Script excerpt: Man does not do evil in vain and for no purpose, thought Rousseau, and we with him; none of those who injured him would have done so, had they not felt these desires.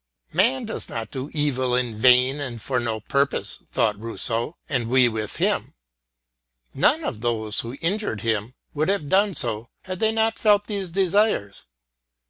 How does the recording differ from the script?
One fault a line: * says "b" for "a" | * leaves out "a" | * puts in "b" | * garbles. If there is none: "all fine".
all fine